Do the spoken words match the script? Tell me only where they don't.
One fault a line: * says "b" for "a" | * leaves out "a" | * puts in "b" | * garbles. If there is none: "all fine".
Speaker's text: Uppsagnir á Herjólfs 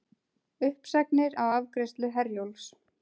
* puts in "afgreiðslu"